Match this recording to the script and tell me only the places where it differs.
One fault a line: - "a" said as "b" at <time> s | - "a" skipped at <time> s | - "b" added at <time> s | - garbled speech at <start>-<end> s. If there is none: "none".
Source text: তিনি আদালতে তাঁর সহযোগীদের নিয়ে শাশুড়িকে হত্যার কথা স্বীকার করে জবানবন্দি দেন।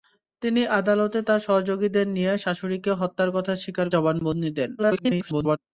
- "করে" skipped at 3.9 s
- garbled speech at 4.8-5.6 s